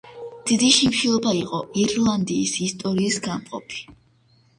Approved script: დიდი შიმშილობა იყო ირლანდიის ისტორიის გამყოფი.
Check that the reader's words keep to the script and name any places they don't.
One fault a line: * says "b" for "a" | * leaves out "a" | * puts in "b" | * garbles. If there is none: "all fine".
all fine